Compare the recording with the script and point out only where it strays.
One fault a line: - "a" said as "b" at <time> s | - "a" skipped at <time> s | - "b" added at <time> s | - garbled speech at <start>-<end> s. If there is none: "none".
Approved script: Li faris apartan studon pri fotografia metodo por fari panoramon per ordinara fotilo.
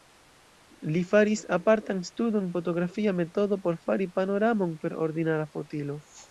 - "pri" skipped at 2.5 s